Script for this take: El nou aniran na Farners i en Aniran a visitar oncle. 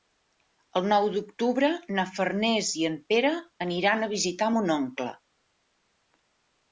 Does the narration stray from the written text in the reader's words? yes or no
yes